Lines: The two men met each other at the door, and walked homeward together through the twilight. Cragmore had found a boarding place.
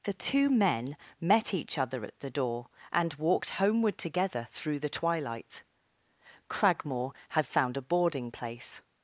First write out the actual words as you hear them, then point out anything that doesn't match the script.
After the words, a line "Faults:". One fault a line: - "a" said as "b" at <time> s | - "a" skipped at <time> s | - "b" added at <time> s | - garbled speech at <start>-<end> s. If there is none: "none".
The two men met each other at the door, and walked homeward together through the twilight. Cragmore had found a boarding place.
Faults:
none